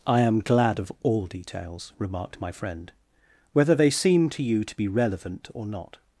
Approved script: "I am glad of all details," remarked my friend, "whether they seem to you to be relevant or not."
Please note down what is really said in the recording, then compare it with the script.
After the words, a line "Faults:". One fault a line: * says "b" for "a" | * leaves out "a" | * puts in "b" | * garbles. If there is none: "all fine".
"I am glad of all details," remarked my friend, "whether they seem to you to be relevant or not."
Faults:
all fine